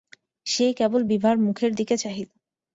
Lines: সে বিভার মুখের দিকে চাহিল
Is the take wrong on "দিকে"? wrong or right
right